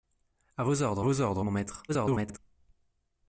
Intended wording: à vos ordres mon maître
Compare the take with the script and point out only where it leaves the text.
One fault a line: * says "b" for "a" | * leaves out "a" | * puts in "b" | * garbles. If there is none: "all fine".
* puts in "vos ordres"
* garbles